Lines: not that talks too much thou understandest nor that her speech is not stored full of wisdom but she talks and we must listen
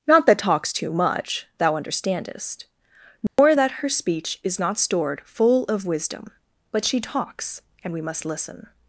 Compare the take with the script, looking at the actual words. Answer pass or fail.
pass